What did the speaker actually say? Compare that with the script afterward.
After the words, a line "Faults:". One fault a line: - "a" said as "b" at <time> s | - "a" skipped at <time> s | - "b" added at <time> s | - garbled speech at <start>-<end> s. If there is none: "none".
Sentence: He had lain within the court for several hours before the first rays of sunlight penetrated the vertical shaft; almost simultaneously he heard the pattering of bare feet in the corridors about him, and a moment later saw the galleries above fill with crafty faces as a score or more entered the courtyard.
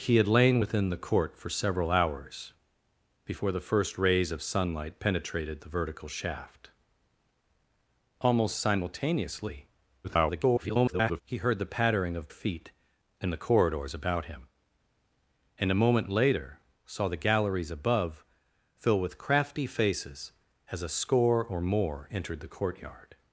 He had lain within the court for several hours before the first rays of sunlight penetrated the vertical shaft; almost simultaneously [garbled] he heard the pattering of feet in the corridors about him, and a moment later saw the galleries above fill with crafty faces as a score or more entered the courtyard.
Faults:
- garbled speech at 10.0-11.2 s
- "bare" skipped at 12.3 s